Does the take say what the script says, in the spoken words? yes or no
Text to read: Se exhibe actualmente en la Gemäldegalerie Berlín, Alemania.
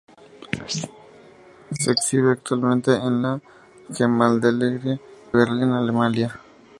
yes